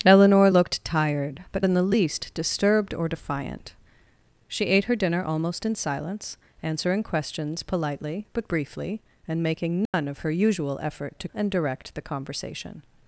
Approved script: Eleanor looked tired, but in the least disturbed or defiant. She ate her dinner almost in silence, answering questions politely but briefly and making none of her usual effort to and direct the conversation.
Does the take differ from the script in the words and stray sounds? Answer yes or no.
yes